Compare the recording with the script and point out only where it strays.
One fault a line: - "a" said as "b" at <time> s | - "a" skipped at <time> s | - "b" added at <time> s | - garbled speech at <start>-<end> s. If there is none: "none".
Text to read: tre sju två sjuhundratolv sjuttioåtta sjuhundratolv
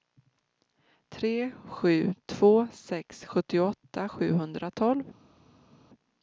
- "sjuhundratolv" said as "sex" at 2.7 s